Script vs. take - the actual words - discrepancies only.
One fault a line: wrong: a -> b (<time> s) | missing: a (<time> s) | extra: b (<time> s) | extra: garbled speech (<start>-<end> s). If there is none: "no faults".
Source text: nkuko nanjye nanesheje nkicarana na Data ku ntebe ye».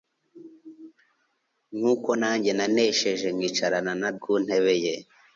missing: Data (4.1 s)